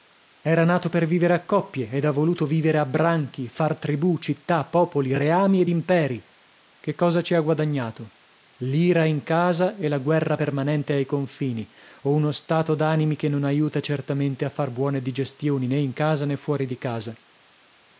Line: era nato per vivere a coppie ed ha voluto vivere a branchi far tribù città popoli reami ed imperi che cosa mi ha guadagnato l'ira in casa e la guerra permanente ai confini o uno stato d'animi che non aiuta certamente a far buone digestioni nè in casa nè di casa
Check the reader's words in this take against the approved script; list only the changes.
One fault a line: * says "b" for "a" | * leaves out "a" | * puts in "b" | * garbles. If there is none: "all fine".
* says "ci" for "mi"
* puts in "fuori"